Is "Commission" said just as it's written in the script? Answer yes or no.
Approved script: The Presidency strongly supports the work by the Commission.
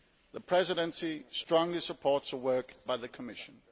yes